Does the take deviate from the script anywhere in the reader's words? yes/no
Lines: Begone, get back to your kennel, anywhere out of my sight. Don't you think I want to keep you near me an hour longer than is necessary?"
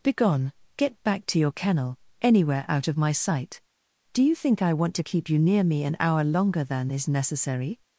yes